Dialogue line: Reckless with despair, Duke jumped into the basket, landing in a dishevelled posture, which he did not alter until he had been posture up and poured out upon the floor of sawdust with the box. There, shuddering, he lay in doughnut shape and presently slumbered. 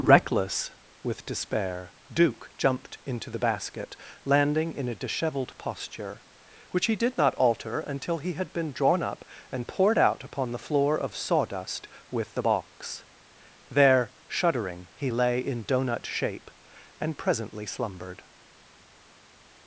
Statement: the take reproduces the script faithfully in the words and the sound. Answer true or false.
false